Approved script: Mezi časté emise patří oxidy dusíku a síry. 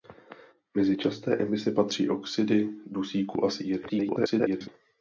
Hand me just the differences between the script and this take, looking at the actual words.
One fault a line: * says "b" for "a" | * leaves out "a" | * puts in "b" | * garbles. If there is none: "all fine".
* garbles